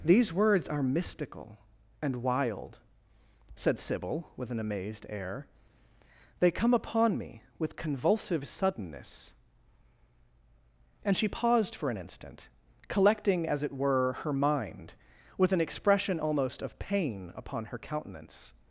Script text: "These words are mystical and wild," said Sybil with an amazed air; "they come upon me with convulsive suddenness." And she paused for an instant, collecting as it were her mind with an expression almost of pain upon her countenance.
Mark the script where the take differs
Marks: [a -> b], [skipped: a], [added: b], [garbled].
"These words are mystical and wild," said Sybil with an amazed air; "they come upon me with convulsive suddenness." And she paused for an instant, collecting as it were her mind with an expression almost of pain upon her countenance.